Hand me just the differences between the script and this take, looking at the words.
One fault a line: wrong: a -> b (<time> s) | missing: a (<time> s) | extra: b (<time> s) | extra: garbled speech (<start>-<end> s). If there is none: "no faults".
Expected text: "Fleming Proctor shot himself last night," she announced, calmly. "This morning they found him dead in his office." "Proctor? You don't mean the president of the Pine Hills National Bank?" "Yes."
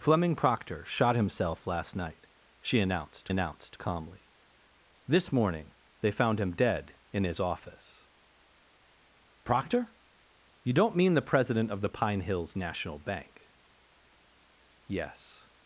extra: announced (3.3 s)